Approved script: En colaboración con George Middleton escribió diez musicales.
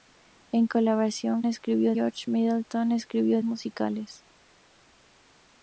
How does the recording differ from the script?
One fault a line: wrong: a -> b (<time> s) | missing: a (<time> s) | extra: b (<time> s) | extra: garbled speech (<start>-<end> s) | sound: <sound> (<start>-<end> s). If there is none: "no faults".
wrong: con -> escribió (1.5 s)
missing: diez (3.4 s)